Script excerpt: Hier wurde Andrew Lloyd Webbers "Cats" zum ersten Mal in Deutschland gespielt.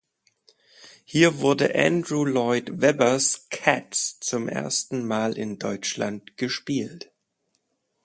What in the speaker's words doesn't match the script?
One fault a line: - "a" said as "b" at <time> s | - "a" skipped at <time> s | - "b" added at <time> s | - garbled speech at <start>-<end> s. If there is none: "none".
none